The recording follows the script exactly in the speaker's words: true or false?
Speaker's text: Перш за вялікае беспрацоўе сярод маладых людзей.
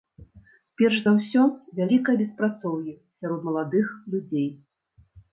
false